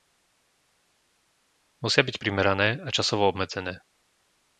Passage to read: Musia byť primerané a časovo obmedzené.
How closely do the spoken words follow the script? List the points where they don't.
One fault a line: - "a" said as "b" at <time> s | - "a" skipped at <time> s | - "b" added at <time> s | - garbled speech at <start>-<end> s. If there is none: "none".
none